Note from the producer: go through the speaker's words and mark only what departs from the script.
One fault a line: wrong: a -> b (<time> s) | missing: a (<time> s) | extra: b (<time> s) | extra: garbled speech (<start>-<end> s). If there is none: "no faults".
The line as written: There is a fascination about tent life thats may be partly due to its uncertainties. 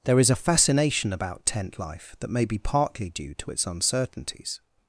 wrong: thats -> that (2.2 s)